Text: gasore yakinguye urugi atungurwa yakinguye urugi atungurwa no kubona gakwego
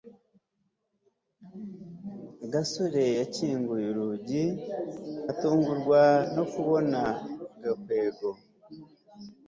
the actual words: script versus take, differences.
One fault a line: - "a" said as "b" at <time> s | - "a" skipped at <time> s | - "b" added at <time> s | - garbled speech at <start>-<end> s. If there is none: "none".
- "yakinguye urugi atungurwa" skipped at 6.0 s